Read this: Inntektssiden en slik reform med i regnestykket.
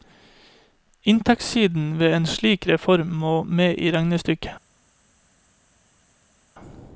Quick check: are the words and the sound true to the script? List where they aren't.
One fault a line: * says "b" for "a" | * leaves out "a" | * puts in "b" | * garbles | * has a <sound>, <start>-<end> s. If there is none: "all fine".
* puts in "ved"
* puts in "må"